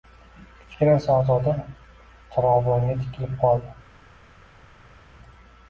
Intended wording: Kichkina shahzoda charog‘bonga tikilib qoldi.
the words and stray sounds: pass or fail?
pass